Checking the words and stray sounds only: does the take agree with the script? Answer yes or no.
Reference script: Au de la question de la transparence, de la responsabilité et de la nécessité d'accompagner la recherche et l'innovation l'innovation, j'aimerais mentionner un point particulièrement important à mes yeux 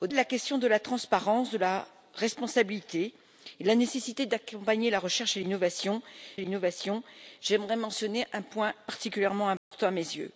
no